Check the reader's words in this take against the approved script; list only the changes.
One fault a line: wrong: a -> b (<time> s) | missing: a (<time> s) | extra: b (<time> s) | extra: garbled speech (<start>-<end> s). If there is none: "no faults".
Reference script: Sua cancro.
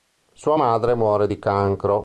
extra: madre muore di (0.5 s)